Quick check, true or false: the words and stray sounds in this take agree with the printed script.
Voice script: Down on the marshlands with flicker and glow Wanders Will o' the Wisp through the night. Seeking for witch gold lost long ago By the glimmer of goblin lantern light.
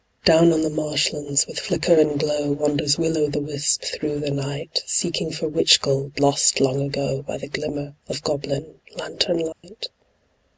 false